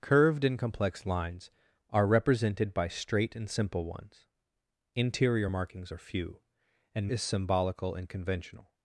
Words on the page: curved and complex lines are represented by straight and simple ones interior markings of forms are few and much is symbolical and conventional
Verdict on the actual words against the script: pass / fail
fail